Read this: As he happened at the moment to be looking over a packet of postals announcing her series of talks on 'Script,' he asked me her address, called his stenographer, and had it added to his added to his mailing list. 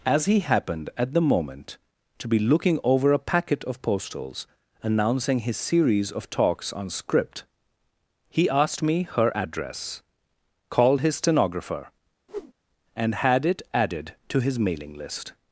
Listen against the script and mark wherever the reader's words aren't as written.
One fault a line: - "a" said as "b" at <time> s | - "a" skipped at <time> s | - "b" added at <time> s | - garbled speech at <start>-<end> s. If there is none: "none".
- "her" said as "his" at 5.4 s
- "added to his" skipped at 14.6 s